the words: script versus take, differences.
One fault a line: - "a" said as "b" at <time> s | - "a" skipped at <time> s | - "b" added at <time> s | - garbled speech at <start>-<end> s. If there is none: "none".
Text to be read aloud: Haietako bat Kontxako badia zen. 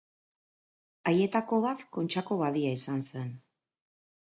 - "izan" added at 2.8 s